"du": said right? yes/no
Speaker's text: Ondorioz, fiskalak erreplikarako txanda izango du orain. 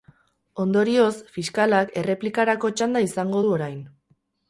yes